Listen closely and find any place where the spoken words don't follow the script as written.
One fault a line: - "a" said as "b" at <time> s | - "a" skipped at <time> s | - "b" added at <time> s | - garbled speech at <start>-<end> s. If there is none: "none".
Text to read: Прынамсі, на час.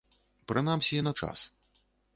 none